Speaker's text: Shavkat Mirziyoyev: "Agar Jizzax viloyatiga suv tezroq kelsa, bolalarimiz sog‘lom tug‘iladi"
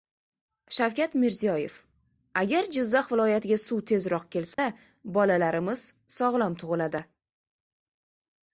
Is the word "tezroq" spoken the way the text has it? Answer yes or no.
yes